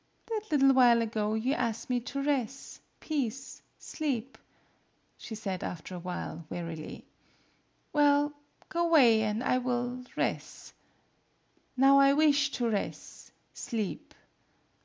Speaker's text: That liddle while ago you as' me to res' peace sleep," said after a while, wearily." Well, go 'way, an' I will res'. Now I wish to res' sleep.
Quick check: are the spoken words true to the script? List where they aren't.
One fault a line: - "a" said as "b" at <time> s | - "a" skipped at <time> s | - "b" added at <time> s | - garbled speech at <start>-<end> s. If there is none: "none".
- "she" added at 5.2 s